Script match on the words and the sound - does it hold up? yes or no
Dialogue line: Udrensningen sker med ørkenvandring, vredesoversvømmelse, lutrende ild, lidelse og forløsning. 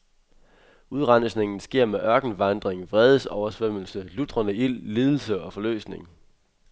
yes